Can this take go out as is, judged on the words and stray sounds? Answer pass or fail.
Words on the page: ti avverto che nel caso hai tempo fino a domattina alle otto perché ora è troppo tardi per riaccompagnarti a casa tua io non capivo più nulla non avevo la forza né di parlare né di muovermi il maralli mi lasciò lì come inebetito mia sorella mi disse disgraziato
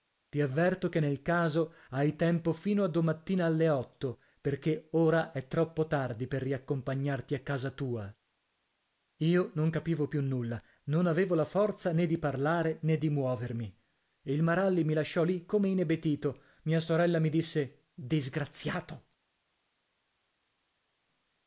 pass